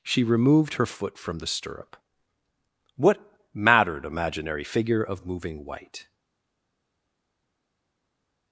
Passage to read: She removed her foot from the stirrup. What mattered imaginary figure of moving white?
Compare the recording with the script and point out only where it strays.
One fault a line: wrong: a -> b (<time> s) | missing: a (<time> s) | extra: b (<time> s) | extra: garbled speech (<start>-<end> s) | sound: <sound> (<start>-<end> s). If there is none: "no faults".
no faults